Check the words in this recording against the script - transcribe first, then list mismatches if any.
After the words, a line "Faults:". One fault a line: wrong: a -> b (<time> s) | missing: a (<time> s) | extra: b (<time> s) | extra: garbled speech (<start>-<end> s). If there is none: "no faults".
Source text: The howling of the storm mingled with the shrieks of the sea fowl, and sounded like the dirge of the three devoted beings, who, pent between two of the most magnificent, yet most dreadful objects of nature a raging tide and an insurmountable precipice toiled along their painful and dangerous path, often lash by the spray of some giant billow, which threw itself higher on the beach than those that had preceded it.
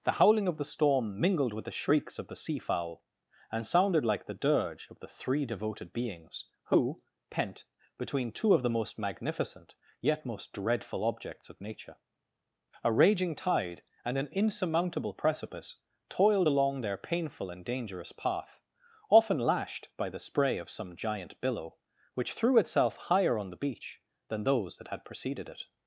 The howling of the storm mingled with the shrieks of the sea fowl, and sounded like the dirge of the three devoted beings, who, pent between two of the most magnificent, yet most dreadful objects of nature a raging tide and an insurmountable precipice toiled along their painful and dangerous path, often lashed by the spray of some giant billow, which threw itself higher on the beach than those that had preceded it.
Faults:
wrong: lash -> lashed (19.4 s)